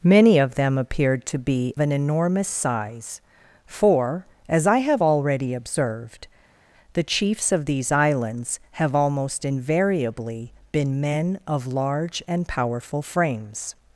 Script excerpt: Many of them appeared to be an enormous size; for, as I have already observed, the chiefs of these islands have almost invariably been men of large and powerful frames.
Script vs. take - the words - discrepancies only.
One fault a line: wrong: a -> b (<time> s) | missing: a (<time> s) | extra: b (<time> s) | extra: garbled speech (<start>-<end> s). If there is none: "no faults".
no faults